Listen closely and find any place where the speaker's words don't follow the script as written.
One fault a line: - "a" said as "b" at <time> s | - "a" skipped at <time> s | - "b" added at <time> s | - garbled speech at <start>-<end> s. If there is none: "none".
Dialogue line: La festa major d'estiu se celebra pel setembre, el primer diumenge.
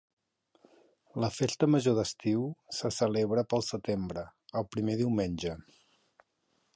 none